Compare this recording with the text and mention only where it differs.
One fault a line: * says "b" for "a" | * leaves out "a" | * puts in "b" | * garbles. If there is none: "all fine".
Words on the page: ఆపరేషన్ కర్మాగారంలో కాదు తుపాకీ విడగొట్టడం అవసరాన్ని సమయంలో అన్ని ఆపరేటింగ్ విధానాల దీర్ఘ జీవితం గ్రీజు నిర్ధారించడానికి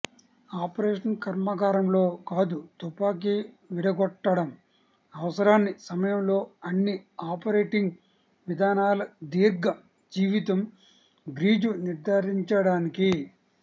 all fine